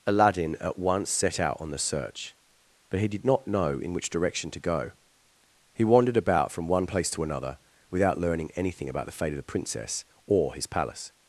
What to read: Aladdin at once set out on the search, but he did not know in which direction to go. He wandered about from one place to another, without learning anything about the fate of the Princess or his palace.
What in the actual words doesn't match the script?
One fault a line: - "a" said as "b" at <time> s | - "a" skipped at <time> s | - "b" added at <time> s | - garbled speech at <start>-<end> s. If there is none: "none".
none